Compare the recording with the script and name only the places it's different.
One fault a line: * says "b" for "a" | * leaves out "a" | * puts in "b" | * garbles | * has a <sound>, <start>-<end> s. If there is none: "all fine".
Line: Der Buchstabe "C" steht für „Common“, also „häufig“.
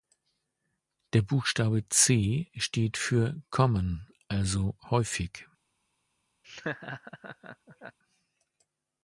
* has a laugh, 6.4-8.0 s